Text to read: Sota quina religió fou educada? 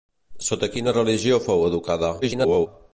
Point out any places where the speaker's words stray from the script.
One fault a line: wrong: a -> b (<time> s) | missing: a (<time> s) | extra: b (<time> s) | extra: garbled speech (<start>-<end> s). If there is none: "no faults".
extra: garbled speech (2.2-2.7 s)